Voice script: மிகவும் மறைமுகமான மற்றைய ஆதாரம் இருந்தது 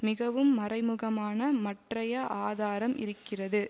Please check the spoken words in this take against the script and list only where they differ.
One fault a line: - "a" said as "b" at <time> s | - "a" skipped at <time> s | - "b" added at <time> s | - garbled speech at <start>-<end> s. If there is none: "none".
- "இருந்தது" said as "இருக்கிறது" at 3.0 s